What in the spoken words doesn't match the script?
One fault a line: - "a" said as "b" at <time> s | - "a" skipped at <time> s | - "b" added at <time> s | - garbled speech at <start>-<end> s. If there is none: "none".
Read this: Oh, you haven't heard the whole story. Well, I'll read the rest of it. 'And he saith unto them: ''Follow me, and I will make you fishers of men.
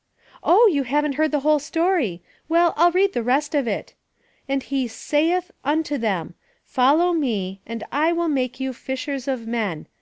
none